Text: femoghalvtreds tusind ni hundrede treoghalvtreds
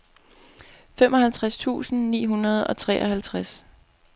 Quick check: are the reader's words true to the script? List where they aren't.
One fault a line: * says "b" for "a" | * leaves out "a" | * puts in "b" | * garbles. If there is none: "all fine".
* puts in "og"